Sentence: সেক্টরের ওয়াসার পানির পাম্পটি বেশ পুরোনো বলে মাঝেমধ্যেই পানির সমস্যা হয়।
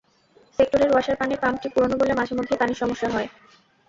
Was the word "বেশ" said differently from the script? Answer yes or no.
yes